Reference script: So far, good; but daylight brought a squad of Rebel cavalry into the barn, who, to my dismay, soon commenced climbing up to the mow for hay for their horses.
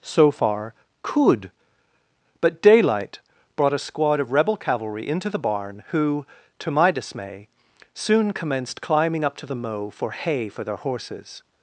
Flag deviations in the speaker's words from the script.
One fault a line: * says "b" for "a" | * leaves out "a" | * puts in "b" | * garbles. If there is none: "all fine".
* says "could" for "good"